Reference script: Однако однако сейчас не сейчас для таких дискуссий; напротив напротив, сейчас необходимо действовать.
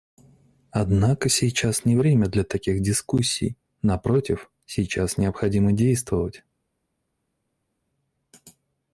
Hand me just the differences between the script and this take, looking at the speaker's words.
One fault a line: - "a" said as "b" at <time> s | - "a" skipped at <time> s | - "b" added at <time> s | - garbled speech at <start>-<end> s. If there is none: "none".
- "однако" skipped at 1.3 s
- "сейчас" said as "время" at 1.9 s
- "напротив" skipped at 4.5 s